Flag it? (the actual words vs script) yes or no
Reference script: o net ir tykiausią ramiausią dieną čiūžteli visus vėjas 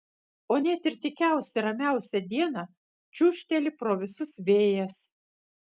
yes